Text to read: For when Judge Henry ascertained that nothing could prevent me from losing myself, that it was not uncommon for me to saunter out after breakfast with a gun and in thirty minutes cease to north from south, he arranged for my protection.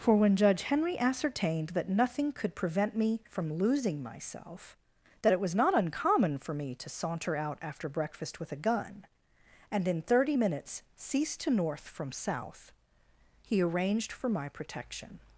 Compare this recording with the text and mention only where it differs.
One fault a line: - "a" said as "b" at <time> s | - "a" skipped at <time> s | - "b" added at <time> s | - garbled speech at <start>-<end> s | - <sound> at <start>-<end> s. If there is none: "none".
none